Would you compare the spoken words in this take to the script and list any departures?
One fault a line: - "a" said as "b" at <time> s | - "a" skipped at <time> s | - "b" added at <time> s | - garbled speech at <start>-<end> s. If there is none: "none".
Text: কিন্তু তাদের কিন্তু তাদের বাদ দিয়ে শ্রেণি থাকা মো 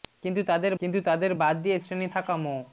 none